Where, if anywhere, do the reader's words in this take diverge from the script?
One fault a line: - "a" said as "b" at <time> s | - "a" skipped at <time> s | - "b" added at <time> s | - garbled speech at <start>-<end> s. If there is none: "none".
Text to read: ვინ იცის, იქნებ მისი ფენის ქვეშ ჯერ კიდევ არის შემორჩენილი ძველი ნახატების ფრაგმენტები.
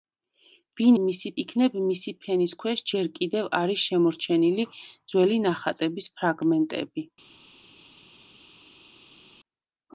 - "იცის" said as "მისი" at 1.0 s